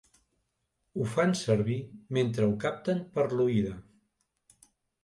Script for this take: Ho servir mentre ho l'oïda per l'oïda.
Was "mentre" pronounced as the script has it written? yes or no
yes